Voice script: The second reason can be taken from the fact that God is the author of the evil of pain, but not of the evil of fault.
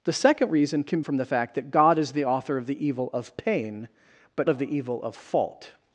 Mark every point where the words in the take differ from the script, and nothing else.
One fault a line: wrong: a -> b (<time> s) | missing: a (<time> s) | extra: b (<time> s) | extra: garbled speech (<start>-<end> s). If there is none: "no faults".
missing: be taken (1.0 s)
missing: not (4.5 s)